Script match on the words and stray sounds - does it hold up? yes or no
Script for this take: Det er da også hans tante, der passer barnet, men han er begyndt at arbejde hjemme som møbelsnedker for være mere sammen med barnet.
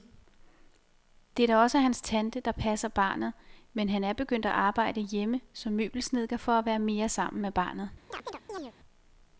no